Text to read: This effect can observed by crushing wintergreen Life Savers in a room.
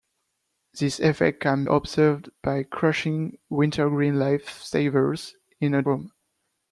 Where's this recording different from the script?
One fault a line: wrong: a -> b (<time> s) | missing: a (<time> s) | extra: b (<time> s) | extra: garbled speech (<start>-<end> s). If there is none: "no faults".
no faults